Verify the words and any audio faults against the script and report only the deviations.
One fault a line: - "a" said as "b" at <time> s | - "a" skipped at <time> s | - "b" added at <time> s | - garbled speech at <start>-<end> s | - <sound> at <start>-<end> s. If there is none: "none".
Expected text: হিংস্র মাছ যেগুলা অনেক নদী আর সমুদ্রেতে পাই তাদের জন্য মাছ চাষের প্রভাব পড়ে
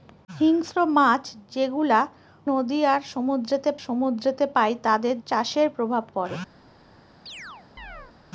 - "অনেক" skipped at 2.0 s
- "সমুদ্রেতে" added at 3.9 s
- "জন্য মাছ" skipped at 5.2 s
- chirp at 7.3-8.1 s